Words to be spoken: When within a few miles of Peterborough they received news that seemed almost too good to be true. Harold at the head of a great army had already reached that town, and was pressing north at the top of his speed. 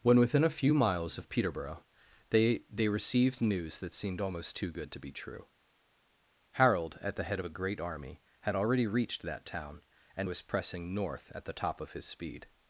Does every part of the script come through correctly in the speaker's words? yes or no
no